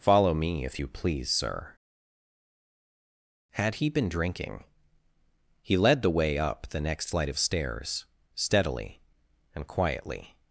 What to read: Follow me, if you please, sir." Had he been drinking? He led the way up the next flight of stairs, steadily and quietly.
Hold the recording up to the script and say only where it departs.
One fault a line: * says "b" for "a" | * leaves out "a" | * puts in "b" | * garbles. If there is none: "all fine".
all fine